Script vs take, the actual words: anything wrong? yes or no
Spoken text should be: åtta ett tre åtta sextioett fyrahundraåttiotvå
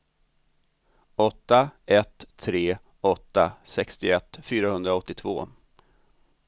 no